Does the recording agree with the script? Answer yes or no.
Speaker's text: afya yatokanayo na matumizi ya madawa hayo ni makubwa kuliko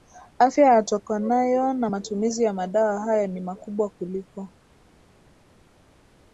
yes